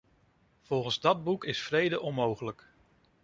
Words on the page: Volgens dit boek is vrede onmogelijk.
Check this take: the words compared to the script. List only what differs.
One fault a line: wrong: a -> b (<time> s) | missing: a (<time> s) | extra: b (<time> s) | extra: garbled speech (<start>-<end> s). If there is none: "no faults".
wrong: dit -> dat (1.0 s)